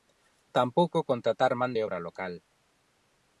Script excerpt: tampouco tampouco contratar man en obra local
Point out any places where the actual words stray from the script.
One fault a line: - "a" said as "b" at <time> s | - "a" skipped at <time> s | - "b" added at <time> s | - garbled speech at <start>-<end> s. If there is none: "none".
- "tampouco" skipped at 1.0 s
- "en" said as "de" at 1.7 s